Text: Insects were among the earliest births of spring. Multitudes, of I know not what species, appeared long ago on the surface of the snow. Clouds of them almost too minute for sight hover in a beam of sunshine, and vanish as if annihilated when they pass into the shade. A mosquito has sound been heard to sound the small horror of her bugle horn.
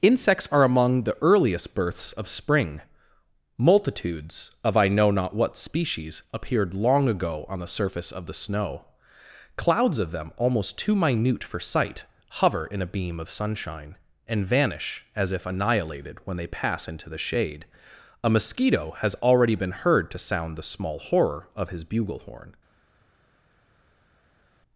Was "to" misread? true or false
false